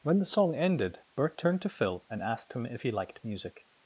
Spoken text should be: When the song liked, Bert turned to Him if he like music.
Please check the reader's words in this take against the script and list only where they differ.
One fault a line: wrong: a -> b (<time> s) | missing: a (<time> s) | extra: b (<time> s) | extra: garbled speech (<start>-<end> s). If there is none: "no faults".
wrong: liked -> ended (0.6 s)
extra: Phil and asked (1.7 s)
wrong: like -> liked (2.9 s)